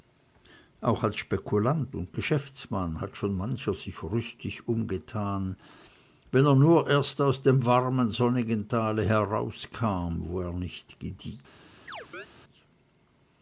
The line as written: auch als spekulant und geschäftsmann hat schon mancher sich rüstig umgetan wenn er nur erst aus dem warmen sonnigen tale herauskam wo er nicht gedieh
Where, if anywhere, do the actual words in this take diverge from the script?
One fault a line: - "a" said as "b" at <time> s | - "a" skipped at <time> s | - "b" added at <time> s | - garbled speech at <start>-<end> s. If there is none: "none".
none